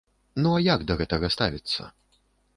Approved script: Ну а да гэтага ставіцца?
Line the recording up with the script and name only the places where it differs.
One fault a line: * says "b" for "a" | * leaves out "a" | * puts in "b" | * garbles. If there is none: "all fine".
* puts in "як"